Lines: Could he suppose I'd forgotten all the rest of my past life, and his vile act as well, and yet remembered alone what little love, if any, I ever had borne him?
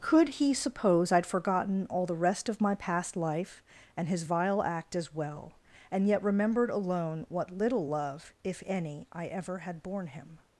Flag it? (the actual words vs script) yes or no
no